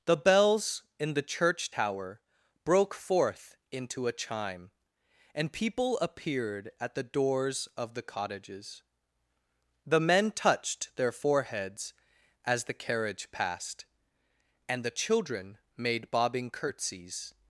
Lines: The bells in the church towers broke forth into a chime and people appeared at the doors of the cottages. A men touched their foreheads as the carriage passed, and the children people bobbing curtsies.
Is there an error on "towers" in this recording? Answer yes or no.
yes